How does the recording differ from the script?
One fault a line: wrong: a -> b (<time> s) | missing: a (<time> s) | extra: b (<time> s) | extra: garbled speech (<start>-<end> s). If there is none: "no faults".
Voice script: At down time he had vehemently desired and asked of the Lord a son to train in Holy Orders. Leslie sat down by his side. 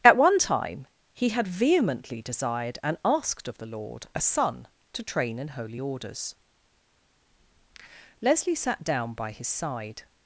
wrong: down -> one (0.2 s)